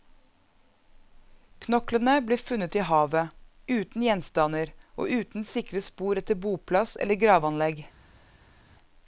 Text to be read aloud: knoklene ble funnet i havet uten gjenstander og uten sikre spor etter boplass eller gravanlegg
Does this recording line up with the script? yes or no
yes